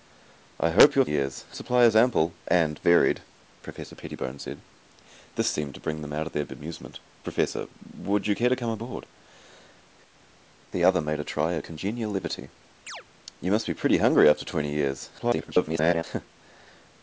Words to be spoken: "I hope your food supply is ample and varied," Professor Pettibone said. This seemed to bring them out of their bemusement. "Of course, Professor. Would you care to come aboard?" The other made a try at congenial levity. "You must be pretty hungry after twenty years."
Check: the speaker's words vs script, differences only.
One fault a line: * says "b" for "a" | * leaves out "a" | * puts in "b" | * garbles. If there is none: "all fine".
* says "years" for "food"
* leaves out "Of course"
* garbles